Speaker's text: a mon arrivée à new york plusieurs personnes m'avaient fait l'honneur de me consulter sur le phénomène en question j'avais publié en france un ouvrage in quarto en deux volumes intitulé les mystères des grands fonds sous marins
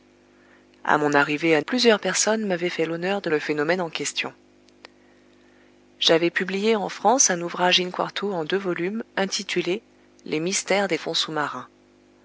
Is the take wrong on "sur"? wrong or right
wrong